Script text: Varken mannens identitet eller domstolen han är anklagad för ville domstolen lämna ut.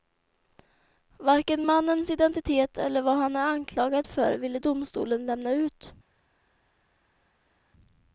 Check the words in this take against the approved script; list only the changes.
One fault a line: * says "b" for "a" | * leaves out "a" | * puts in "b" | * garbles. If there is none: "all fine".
* says "vad" for "domstolen"